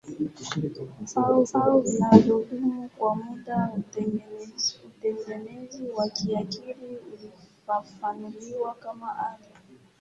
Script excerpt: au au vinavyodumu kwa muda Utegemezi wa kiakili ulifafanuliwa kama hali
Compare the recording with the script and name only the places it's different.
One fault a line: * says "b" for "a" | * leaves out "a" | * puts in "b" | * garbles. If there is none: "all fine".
all fine